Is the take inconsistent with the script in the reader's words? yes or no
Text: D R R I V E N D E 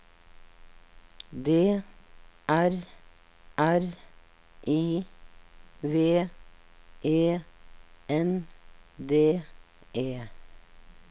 no